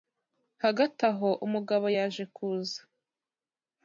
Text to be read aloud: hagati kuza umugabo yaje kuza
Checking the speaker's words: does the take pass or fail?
fail